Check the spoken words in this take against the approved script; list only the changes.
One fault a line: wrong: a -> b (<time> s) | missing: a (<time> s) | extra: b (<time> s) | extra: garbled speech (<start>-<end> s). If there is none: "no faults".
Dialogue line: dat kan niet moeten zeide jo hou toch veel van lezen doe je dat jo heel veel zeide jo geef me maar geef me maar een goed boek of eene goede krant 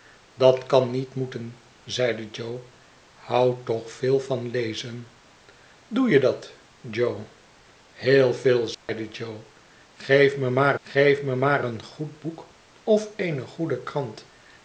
no faults